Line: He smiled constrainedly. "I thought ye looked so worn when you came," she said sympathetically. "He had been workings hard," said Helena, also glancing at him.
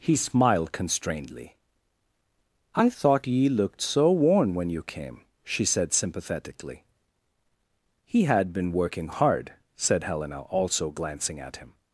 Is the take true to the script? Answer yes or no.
no